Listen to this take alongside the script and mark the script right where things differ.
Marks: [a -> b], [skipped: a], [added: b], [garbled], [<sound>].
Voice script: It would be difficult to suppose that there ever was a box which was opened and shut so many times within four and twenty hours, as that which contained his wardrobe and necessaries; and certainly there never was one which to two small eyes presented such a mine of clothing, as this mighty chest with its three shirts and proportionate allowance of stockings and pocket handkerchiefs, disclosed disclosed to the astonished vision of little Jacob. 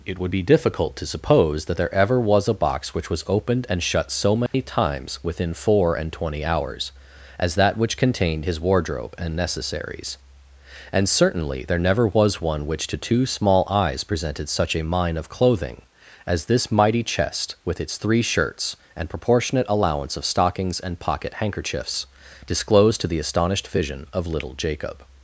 It would be difficult to suppose that there ever was a box which was opened and shut so many [dropout] times within four and twenty hours, as that which contained his wardrobe and necessaries; and certainly there never was one which to two small eyes presented such a mine of clothing, as this mighty chest with its three shirts and proportionate allowance of stockings and pocket handkerchiefs, disclosed [skipped: disclosed] to the astonished vision of little Jacob.